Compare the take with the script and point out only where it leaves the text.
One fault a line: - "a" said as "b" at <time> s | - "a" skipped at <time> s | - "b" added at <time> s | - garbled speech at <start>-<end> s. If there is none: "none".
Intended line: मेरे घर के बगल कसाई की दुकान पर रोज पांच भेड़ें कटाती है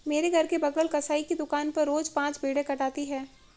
none